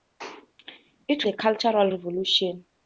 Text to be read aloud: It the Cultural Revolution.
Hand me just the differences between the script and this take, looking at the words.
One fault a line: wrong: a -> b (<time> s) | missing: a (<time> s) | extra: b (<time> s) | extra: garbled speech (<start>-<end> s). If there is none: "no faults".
no faults